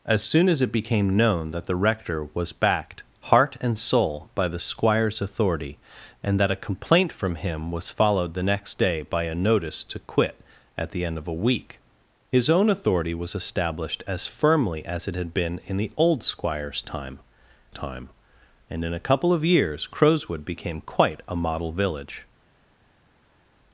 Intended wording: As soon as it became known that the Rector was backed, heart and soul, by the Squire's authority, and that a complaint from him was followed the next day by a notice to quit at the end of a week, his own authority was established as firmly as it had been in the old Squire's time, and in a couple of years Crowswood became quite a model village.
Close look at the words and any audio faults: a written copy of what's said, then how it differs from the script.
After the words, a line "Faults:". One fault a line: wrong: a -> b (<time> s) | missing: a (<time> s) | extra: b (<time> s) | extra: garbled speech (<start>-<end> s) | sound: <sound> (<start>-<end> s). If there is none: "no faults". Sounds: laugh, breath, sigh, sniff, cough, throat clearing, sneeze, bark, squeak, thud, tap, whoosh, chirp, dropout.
As soon as it became known that the Rector was backed, heart and soul, by the Squire's authority, and that a complaint from him was followed the next day by a notice to quit at the end of a week, his own authority was established as firmly as it had been in the old Squire's time time, and in a couple of years Crowswood became quite a model village.
Faults:
extra: time (17.7 s)